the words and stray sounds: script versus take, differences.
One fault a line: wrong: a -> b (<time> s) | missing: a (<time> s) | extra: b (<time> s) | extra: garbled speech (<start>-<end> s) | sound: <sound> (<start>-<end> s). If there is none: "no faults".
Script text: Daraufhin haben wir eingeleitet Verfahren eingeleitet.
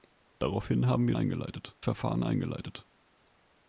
no faults